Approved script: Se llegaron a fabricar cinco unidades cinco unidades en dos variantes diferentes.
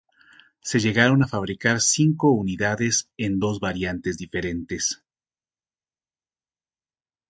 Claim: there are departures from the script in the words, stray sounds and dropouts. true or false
true